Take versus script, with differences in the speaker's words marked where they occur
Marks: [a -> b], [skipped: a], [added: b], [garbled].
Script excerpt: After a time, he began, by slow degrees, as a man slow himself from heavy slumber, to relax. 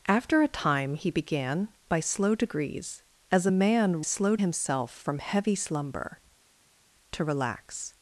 After a time, he began, by slow degrees, as a man slow himself from heavy slumber, to relax.